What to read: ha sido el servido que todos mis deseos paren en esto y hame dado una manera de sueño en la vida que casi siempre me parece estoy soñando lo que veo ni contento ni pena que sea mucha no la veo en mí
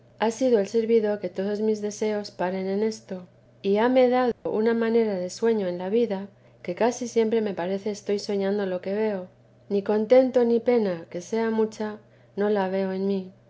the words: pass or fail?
pass